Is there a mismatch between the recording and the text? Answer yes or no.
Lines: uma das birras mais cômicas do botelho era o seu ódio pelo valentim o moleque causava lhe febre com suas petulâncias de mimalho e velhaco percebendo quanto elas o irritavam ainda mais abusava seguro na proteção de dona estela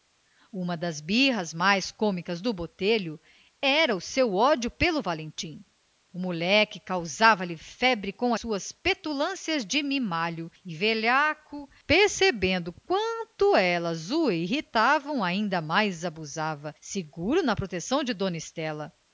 no